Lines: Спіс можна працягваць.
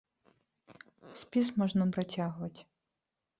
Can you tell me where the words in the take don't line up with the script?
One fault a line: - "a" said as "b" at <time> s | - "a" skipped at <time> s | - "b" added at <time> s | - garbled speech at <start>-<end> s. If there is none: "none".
none